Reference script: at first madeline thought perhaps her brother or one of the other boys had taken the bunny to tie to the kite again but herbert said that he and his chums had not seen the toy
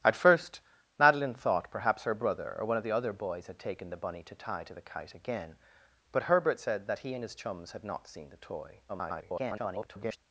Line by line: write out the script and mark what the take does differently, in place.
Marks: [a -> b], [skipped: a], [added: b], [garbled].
at first madeline thought perhaps her brother or one of the other boys had taken the bunny to tie to the kite again but herbert said that he and his chums had not seen the toy [garbled]